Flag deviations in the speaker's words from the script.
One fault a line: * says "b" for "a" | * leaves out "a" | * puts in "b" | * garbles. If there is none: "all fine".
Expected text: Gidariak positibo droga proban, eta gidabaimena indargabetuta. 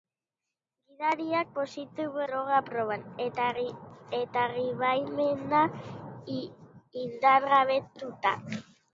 all fine